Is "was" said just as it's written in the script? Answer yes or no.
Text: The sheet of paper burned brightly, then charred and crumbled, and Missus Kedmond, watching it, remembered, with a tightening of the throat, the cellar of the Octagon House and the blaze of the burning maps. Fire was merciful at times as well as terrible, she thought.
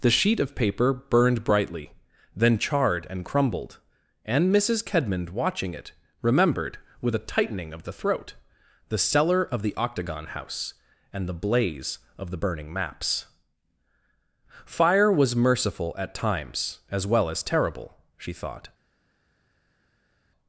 yes